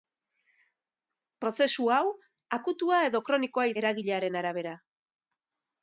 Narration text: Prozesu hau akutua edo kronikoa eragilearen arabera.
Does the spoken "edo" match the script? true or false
true